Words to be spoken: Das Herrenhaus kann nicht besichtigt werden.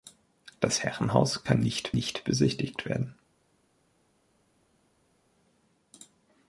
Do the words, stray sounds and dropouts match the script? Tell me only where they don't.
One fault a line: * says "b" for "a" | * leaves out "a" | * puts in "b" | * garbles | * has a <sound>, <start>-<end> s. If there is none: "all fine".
* puts in "nicht"